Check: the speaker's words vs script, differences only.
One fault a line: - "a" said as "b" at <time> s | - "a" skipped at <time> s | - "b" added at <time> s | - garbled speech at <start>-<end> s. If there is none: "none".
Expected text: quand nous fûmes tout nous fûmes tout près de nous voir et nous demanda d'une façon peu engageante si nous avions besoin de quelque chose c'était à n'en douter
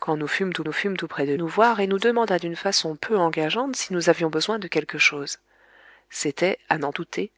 none